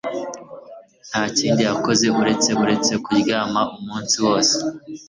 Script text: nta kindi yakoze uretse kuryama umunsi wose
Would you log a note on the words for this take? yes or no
yes